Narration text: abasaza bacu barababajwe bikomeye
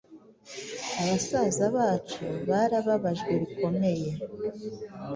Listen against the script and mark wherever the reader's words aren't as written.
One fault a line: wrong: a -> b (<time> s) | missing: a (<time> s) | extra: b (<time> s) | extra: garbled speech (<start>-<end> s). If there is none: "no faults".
no faults